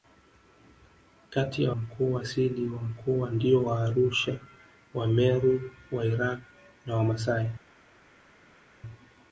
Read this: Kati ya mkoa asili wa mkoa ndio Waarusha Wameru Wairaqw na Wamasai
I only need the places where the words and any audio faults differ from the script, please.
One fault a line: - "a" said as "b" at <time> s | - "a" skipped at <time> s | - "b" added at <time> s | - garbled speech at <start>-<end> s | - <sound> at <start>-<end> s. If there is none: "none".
none